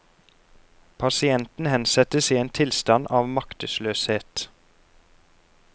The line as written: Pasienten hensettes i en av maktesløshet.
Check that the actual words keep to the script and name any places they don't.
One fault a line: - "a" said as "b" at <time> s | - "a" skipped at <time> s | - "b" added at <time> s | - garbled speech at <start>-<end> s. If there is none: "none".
- "tilstand" added at 2.5 s